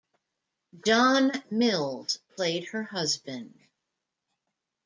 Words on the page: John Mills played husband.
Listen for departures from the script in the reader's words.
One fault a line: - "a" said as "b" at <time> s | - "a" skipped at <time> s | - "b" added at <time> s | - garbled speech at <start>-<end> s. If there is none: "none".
- "her" added at 2.7 s